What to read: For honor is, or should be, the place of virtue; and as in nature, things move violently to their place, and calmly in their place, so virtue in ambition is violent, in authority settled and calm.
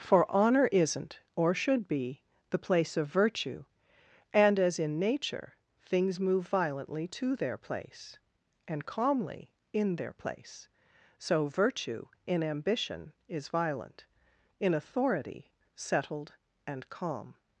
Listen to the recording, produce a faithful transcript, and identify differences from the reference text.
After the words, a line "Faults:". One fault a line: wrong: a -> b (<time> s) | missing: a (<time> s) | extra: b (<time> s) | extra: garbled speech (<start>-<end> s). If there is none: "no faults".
For honor isn't, or should be, the place of virtue; and as in nature, things move violently to their place, and calmly in their place, so virtue in ambition is violent, in authority settled and calm.
Faults:
wrong: is -> isn't (0.7 s)